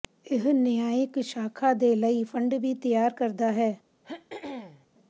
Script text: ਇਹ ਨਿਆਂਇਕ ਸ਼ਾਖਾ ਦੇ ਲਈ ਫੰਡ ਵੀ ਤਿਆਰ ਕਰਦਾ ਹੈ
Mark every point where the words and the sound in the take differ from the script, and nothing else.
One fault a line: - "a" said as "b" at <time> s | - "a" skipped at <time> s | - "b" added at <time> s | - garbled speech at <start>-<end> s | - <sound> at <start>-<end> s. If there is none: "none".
- throat clearing at 4.0-4.9 s